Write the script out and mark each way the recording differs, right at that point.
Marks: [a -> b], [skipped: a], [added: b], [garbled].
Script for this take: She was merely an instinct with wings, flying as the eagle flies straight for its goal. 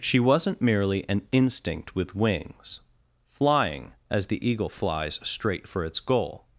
She [was -> wasn't] merely an instinct with wings, flying as the eagle flies straight for its goal.